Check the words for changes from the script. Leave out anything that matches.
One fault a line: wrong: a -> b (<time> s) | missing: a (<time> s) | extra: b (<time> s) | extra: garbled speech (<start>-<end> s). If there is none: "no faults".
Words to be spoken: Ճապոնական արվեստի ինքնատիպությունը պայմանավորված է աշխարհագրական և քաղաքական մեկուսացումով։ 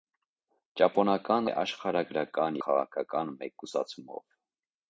missing: արվեստի ինքնատիպությունը պայմանավորված (1.5 s)
missing: և (2.6 s)